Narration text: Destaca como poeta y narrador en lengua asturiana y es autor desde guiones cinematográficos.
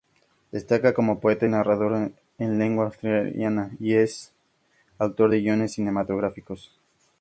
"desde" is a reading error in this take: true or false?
true